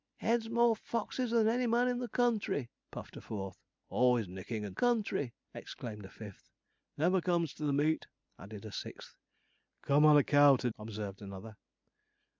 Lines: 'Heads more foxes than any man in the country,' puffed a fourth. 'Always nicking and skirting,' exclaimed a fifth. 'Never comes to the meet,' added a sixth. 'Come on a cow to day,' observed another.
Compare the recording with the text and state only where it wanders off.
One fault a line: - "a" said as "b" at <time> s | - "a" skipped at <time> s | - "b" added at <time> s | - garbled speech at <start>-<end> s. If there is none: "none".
- "skirting" said as "country" at 4.7 s
- "day" skipped at 10.7 s